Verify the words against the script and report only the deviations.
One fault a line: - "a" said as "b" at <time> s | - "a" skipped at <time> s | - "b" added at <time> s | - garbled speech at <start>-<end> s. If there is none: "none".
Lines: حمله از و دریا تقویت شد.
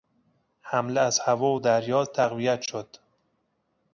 - "هوا" added at 1.2 s